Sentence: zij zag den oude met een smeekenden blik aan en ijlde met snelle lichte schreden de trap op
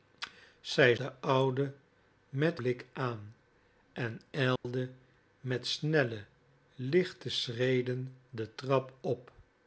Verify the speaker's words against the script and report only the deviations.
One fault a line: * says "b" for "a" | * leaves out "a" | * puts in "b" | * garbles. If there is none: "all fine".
* leaves out "zag"
* leaves out "een smeekenden"